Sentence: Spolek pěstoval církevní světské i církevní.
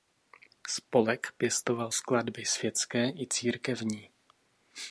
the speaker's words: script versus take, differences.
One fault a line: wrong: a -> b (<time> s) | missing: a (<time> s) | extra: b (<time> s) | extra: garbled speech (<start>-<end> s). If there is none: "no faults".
wrong: církevní -> skladby (1.9 s)